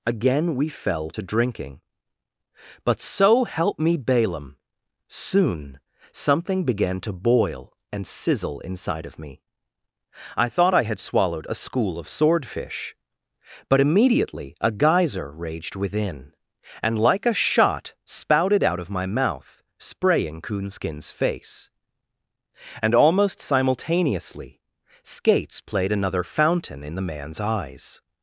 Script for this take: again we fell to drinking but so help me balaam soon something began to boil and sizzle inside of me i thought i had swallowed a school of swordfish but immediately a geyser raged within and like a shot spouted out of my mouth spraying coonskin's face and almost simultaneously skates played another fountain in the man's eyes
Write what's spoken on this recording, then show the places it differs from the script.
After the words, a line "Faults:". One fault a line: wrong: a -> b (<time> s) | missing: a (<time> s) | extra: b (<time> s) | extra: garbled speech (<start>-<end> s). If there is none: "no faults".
again we fell to drinking but so help me balaam soon something began to boil and sizzle inside of me i thought i had swallowed a school of swordfish but immediately a geyser raged within and like a shot spouted out of my mouth spraying coonskin's face and almost simultaneously skates played another fountain in the man's eyes
Faults:
no faults